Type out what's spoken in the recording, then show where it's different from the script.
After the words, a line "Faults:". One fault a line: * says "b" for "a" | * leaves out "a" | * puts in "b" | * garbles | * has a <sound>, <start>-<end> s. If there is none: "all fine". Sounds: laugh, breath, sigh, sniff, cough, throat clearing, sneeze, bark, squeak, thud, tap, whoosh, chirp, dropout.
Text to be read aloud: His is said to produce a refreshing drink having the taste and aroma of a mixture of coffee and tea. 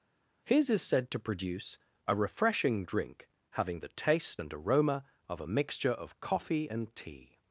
His is said to produce a refreshing drink having the taste and aroma of a mixture of coffee and tea.
Faults:
all fine